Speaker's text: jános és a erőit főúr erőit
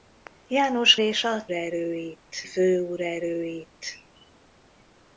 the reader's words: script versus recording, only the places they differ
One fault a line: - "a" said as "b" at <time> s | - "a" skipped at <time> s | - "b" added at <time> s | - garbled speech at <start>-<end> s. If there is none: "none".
none